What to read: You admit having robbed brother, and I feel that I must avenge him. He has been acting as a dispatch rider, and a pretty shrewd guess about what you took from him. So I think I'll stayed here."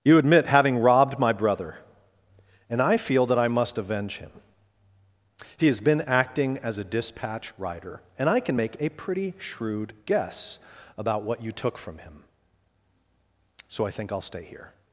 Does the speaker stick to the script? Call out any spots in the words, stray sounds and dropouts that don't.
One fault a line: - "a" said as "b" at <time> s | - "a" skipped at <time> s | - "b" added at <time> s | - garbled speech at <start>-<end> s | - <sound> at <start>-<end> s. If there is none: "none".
- "my" added at 1.2 s
- "I can make" added at 8.3 s
- "stayed" said as "stay" at 14.2 s